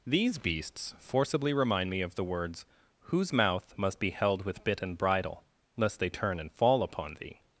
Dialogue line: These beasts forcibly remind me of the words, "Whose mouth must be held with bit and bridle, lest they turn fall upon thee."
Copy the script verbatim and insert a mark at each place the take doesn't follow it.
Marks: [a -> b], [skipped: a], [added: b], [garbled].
These beasts forcibly remind me of the words, "Whose mouth must be held with bit and bridle, lest they turn [added: and] fall upon thee."